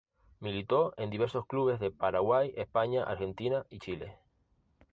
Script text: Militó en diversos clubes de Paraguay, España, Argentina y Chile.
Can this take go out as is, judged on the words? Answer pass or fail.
pass